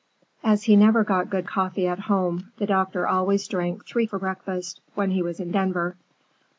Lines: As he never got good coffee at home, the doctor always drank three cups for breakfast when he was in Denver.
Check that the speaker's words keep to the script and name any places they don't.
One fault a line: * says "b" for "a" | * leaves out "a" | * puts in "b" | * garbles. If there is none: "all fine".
* leaves out "cups"